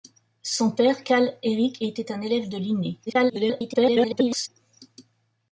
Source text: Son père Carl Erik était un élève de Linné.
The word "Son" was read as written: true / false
true